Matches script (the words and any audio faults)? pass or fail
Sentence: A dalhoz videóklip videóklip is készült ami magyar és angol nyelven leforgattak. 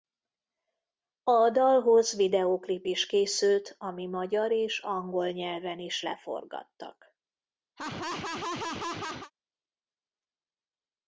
fail